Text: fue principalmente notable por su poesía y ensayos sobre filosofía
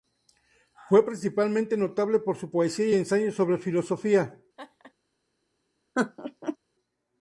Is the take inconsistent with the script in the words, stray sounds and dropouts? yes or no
yes